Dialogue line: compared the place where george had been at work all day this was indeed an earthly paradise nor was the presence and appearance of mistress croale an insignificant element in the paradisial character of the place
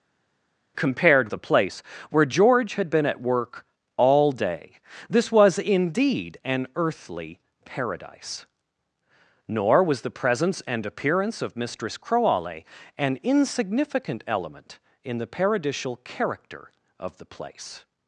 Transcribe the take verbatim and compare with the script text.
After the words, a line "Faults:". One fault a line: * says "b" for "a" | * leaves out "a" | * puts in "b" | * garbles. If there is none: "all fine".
compared the place where george had been at work all day this was indeed an earthly paradise nor was the presence and appearance of mistress croale an insignificant element in the paradisial character of the place
Faults:
all fine